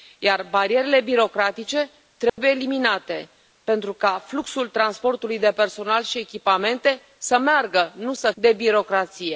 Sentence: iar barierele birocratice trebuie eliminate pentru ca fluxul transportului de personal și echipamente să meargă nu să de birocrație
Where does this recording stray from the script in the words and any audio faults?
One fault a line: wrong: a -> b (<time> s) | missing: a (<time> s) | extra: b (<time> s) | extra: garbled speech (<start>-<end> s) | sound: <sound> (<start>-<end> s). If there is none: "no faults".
sound: dropout (2.3-2.4 s)